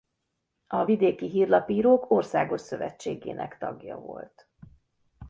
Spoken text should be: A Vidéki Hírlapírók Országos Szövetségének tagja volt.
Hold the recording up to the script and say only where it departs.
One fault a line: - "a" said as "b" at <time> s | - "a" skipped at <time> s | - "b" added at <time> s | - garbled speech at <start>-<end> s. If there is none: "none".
none